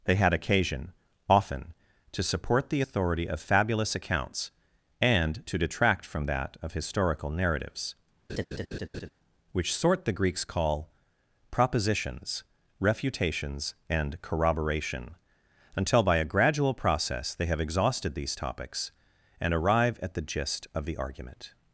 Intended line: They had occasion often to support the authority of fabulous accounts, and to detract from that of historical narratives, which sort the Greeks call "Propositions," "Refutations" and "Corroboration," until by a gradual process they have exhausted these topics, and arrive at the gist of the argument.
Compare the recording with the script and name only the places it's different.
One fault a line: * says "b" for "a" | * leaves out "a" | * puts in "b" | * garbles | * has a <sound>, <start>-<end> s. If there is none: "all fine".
* has a laugh, 8.3-9.1 s